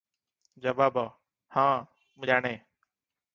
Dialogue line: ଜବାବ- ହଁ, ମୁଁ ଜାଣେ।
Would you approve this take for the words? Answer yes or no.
yes